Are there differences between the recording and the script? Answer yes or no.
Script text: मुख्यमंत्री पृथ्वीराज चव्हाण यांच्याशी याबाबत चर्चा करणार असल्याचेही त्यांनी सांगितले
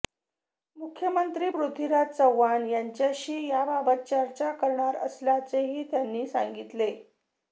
no